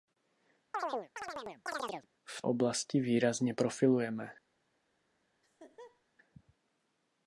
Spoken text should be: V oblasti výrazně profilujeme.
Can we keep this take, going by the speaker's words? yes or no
yes